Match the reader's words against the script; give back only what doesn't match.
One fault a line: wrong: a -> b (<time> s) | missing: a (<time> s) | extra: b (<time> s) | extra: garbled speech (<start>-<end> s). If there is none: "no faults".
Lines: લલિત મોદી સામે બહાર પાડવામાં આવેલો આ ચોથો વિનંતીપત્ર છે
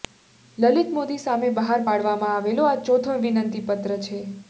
no faults